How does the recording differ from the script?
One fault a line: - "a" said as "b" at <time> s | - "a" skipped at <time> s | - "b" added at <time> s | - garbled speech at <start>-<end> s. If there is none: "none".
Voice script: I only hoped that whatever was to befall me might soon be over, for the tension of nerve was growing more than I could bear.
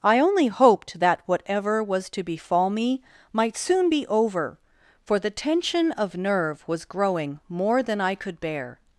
none